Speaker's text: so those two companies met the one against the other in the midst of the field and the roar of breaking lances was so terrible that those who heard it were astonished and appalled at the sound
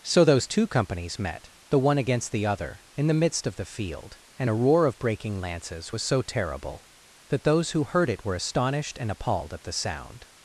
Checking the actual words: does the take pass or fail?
fail